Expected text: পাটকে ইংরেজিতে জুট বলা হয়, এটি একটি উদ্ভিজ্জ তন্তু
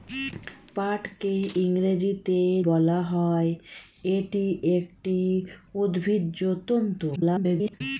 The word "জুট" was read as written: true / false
false